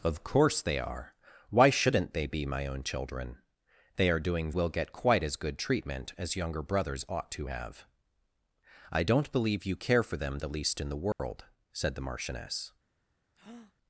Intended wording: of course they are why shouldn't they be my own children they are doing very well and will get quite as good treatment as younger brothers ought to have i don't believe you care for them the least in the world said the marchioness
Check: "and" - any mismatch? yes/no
yes